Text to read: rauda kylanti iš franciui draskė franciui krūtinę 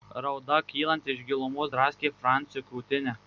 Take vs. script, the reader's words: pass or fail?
fail